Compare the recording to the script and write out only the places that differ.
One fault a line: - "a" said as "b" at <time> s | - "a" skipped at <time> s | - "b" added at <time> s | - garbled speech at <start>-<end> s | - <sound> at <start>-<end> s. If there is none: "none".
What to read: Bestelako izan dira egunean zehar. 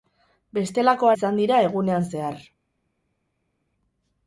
none